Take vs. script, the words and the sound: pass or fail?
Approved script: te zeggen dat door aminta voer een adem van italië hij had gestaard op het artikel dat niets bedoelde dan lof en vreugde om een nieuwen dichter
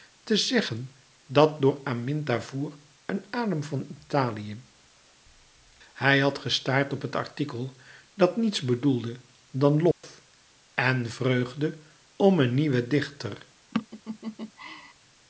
fail